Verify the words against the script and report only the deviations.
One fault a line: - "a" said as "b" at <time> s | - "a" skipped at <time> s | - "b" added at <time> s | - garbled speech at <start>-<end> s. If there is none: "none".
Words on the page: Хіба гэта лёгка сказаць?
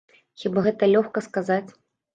none